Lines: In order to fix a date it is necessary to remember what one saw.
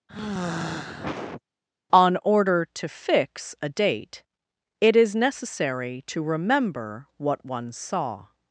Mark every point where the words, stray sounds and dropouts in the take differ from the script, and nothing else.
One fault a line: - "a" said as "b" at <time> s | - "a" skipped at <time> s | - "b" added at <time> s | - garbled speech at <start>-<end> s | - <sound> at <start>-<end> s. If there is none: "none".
- sigh at 0.1-1.4 s
- "In" said as "On" at 1.9 s